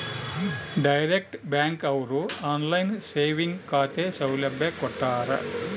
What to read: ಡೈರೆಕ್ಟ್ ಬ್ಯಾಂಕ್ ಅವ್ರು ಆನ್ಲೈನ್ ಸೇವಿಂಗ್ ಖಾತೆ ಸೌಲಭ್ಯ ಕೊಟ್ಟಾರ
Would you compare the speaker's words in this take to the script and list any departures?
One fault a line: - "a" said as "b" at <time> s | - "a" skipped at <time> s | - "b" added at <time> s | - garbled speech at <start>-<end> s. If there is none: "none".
none